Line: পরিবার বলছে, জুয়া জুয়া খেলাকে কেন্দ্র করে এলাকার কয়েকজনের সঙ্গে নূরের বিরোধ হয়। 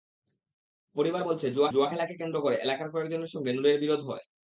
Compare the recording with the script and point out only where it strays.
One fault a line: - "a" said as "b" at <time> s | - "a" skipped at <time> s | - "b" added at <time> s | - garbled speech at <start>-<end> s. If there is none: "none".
none